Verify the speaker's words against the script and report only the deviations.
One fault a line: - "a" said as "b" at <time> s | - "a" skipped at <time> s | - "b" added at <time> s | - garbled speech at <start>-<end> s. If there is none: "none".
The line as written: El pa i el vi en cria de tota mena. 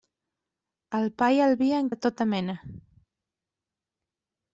- "cria" skipped at 1.9 s